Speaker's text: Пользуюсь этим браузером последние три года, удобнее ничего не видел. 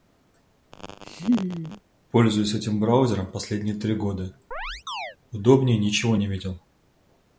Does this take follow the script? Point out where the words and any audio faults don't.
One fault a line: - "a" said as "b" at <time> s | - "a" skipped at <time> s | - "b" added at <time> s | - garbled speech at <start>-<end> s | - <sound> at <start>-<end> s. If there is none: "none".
- laugh at 0.7-1.8 s
- chirp at 4.5-5.2 s